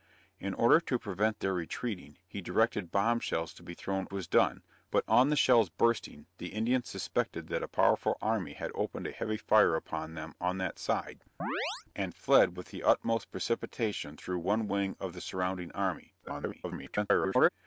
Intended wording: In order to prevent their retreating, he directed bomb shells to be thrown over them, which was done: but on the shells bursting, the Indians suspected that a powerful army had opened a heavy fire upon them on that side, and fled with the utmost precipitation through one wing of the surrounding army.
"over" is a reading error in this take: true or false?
true